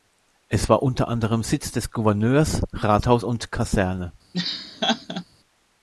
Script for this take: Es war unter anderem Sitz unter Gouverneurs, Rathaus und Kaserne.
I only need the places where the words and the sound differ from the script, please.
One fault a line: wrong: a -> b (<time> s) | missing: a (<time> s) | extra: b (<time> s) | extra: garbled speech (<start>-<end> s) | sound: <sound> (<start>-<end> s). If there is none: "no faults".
wrong: unter -> des (1.7 s)
sound: laugh (4.3-5.2 s)